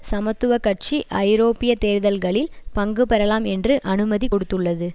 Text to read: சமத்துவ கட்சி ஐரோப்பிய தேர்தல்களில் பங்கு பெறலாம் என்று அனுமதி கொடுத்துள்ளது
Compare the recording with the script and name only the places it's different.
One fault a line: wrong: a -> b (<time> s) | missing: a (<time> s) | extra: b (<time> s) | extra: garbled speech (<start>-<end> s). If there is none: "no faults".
no faults